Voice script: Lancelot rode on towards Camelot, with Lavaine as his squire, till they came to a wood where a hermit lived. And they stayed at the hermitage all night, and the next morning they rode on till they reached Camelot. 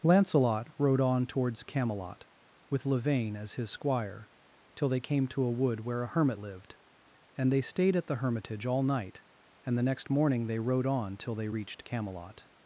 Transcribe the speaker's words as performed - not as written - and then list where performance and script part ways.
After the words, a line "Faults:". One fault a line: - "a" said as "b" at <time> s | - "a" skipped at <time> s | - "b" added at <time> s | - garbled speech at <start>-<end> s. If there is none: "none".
Lancelot rode on towards Camelot, with Lavaine as his squire, till they came to a wood where a hermit lived. And they stayed at the hermitage all night, and the next morning they rode on till they reached Camelot.
Faults:
none